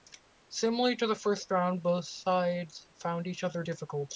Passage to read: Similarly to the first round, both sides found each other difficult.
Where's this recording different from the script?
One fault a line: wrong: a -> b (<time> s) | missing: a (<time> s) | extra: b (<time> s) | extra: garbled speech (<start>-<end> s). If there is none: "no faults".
no faults